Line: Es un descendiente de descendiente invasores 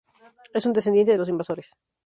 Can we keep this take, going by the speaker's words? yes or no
no